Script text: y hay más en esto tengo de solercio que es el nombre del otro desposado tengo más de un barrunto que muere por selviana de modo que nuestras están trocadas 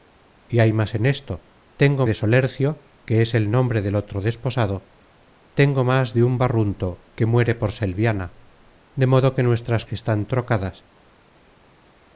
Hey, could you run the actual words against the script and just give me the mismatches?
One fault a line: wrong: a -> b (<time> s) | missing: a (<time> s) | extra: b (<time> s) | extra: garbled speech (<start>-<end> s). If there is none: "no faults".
no faults